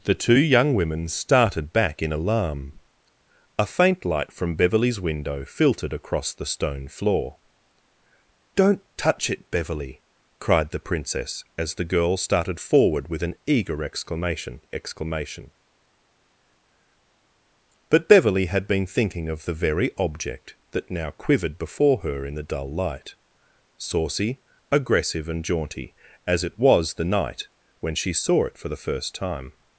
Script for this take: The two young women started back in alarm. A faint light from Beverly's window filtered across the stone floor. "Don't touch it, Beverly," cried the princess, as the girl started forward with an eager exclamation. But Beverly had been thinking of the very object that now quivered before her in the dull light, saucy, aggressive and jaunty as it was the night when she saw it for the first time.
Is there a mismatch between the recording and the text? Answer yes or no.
yes